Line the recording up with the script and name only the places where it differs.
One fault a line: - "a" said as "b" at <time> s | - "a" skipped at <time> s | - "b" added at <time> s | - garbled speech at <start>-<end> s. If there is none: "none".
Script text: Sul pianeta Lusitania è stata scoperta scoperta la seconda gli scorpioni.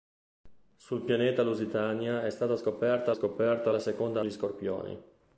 none